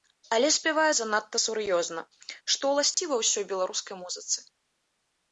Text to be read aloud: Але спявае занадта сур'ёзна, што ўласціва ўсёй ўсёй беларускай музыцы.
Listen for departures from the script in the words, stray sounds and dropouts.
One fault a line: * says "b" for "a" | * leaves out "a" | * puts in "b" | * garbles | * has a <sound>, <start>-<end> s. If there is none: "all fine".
* has a dropout, 2.9-3.0 s
* leaves out "ўсёй"